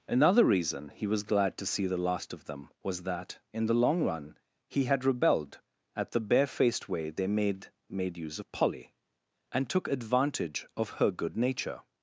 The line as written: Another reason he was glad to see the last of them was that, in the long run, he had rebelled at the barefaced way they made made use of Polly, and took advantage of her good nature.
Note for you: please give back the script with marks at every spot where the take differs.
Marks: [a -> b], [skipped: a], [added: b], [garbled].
Another reason he was glad to see the last of them was that, in the long run, he had rebelled at the barefaced way they made made use of Polly, and took advantage of her good nature.